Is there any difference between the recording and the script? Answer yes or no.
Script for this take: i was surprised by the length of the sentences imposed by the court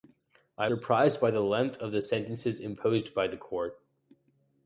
yes